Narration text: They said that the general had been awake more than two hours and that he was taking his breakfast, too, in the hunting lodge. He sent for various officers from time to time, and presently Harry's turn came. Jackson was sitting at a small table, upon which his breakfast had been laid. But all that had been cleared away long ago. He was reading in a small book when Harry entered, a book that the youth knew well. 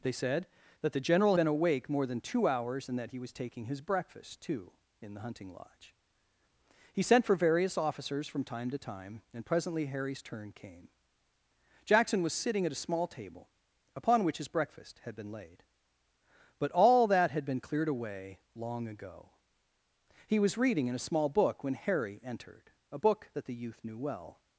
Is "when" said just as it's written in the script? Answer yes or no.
yes